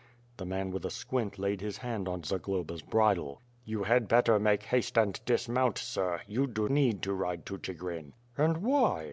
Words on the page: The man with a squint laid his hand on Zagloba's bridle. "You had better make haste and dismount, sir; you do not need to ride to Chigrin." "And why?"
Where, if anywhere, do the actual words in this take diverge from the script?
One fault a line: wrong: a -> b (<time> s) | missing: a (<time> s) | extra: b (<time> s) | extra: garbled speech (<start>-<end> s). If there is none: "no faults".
missing: not (6.7 s)